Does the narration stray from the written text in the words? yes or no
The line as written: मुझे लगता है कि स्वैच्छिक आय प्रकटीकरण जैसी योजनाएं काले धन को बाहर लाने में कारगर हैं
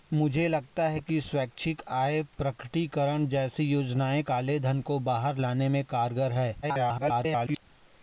yes